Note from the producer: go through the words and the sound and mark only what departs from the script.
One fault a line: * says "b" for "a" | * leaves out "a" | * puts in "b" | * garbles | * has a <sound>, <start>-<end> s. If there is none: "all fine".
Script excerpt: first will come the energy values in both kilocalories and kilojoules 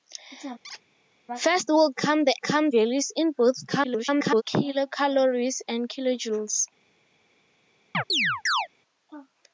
* has a squeak, 0.6-0.8 s
* says "come" for "energy"
* garbles
* has a chirp, 7.9-8.7 s